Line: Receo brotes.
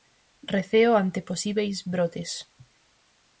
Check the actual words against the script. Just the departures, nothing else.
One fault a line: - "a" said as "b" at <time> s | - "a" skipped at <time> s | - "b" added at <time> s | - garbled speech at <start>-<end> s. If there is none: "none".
- "ante posíbeis" added at 1.0 s